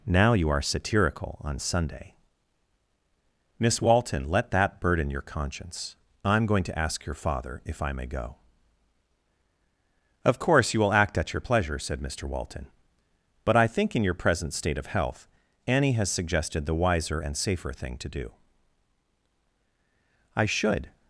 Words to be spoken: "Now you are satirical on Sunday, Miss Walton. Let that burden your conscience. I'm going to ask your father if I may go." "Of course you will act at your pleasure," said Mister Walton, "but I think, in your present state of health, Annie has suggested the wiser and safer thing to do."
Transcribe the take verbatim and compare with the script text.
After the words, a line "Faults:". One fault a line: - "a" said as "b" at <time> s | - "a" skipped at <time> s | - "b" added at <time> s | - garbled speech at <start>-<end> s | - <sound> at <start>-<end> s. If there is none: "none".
"Now you are satirical on Sunday, Miss Walton. Let that burden your conscience. I'm going to ask your father if I may go." "Of course you will act at your pleasure," said Mister Walton, "but I think, in your present state of health, Annie has suggested the wiser and safer thing to do." "I should
Faults:
- "I should" added at 20.4 s